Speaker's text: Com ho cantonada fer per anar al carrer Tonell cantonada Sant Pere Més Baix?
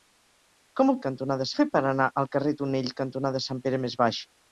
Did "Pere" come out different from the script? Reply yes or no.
no